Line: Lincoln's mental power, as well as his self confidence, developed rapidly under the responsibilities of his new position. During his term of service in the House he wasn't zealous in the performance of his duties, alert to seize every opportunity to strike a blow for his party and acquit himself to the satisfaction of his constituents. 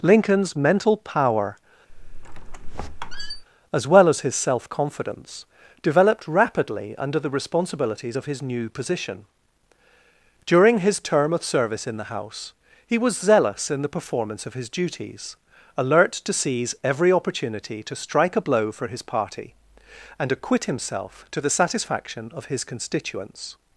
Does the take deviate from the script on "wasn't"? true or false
true